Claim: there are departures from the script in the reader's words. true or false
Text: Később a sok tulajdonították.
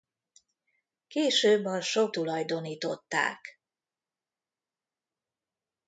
false